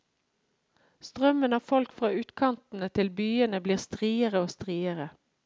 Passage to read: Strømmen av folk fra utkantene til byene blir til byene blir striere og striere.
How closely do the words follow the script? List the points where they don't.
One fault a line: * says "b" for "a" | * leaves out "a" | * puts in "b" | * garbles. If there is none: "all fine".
* leaves out "til byene blir"